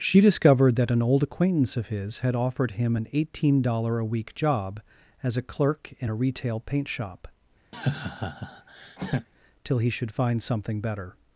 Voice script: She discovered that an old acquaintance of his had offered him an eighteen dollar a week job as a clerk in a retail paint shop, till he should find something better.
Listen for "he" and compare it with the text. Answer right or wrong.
right